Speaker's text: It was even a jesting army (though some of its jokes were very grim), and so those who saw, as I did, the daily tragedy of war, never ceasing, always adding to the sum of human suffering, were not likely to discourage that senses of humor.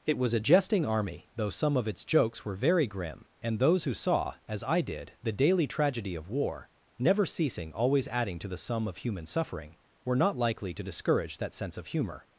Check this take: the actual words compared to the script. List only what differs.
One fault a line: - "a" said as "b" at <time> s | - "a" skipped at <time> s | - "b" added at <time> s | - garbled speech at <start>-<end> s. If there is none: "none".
- "even" skipped at 0.3 s
- "so" skipped at 3.6 s
- "senses" said as "sense" at 11.5 s